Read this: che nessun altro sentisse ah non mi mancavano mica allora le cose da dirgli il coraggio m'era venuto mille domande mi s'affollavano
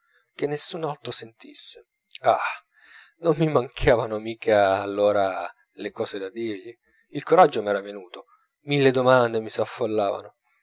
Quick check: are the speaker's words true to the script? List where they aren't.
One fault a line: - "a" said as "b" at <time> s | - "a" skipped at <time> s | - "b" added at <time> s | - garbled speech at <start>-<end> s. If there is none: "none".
none